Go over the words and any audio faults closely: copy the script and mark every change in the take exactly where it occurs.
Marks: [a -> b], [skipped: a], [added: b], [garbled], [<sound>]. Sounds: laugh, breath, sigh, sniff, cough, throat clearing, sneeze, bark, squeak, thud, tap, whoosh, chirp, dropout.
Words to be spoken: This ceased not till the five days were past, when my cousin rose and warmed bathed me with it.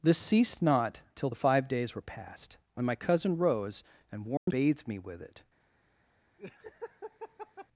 This ceased not till the five days were past, when my cousin rose and warmed [dropout] bathed me with it. [laugh]